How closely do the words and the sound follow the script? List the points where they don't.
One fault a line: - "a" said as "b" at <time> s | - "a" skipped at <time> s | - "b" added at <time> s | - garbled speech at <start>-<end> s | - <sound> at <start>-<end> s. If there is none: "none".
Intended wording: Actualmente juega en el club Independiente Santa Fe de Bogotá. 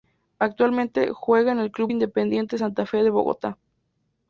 none